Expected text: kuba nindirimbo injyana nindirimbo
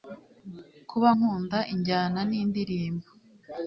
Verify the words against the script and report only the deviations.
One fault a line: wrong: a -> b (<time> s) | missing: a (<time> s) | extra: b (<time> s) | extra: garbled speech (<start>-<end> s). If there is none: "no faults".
wrong: nindirimbo -> nkunda (1.1 s)